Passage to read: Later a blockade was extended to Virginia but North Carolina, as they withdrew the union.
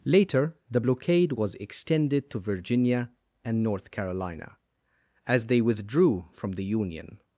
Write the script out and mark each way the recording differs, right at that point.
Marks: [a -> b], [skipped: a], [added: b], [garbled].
Later [a -> the] blockade was extended to Virginia [but -> and] North Carolina, as they withdrew [added: from] the union.